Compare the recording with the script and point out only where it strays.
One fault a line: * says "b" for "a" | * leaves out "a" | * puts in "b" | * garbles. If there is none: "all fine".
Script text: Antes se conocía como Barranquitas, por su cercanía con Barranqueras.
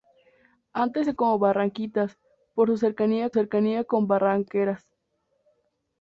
* leaves out "conocía"
* puts in "cercanía"